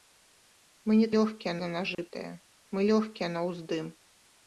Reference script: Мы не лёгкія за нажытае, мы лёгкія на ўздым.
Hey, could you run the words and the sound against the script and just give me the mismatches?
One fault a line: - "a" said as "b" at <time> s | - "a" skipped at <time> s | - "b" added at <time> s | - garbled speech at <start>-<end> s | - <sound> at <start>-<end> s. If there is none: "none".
- dropout at 1.9-2.0 s